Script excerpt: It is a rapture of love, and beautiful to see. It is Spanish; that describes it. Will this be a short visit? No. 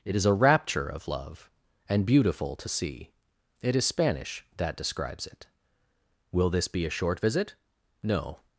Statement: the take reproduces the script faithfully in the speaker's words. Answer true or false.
true